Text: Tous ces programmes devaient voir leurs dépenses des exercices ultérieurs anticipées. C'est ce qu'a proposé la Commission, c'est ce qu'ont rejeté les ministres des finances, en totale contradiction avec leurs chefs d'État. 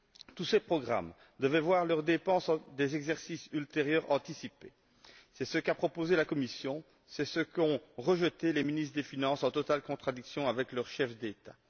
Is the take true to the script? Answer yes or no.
yes